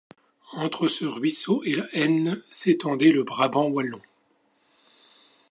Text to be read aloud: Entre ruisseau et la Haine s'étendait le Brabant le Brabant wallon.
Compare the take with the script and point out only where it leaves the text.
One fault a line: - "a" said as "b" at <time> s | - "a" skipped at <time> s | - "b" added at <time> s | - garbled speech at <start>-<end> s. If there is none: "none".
- "ce" added at 0.9 s
- "le Brabant" skipped at 3.7 s